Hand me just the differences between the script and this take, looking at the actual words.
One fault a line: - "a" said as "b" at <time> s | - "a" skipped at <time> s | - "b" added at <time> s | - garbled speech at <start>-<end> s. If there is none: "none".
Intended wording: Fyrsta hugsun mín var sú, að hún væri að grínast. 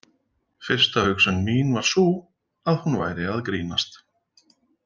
none